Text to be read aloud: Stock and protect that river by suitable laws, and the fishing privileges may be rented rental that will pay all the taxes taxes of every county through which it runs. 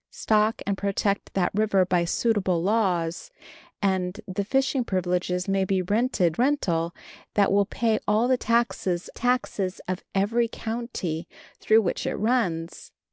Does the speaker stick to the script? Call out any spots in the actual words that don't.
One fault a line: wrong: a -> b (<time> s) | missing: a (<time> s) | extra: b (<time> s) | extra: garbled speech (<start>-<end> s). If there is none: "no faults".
no faults